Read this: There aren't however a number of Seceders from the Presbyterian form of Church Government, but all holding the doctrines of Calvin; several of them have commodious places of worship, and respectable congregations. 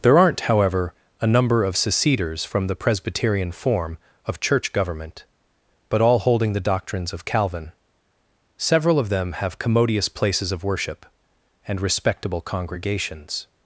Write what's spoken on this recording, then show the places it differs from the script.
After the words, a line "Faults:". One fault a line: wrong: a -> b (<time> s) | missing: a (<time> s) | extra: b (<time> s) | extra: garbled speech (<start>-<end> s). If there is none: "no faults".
There aren't however a number of Seceders from the Presbyterian form of Church Government, but all holding the doctrines of Calvin; several of them have commodious places of worship, and respectable congregations.
Faults:
no faults